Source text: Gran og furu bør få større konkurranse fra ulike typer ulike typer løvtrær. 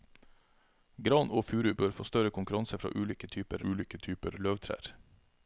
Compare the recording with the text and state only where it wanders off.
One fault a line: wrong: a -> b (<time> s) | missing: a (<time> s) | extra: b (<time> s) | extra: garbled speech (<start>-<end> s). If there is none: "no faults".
no faults